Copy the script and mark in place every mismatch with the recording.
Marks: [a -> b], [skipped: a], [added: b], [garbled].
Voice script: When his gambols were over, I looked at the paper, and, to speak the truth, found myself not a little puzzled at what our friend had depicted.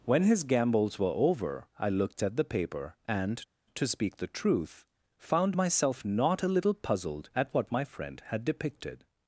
When his gambols were over, I looked at the paper, and, to speak the truth, found myself not a little puzzled at what [our -> my] friend had depicted.